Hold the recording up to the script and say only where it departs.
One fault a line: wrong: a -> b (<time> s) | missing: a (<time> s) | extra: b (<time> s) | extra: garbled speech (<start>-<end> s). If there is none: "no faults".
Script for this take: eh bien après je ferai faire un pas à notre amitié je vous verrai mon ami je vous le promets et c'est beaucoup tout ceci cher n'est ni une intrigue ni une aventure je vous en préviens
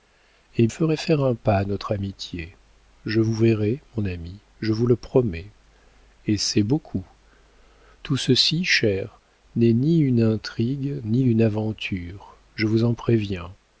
missing: bien après je (0.7 s)